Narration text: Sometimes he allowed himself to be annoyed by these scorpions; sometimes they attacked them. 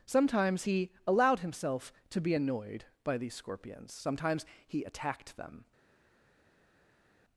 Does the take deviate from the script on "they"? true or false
true